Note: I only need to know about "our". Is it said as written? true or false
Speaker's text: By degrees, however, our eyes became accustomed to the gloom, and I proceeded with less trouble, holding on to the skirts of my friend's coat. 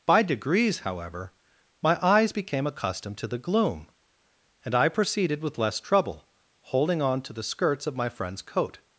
false